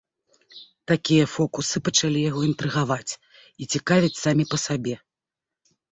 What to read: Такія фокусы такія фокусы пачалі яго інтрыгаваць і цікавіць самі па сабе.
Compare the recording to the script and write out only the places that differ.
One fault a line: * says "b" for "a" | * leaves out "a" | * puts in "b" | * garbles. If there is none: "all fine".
* leaves out "такія фокусы"